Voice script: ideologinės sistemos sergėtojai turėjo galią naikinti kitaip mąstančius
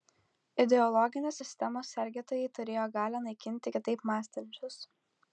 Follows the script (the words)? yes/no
yes